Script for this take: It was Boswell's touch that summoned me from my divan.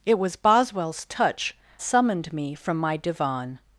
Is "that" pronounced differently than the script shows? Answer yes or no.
yes